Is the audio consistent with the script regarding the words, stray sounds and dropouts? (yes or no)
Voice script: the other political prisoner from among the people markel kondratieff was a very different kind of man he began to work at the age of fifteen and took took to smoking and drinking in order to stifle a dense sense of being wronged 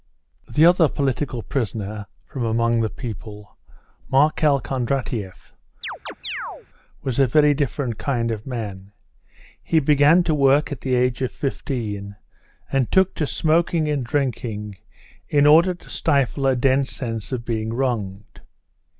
no